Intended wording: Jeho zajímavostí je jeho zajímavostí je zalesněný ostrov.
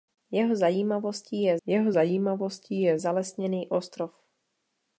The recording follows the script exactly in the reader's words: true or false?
true